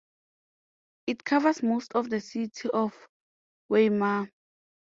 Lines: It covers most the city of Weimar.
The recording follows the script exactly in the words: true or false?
false